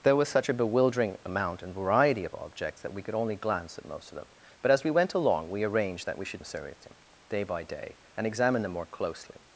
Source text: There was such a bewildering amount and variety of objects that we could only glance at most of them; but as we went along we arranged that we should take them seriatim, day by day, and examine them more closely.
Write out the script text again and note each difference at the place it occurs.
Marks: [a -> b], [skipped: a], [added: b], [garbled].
There was such a bewildering amount and variety of objects that we could only glance at most of them; but as we went along we arranged that we should [skipped: take them] seriatim, day by day, and examine them more closely.